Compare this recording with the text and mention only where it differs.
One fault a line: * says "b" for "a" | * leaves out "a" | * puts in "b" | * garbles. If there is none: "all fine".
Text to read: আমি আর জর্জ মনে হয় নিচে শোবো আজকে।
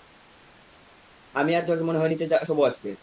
all fine